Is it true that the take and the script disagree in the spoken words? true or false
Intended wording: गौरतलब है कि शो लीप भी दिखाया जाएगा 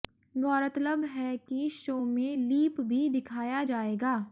true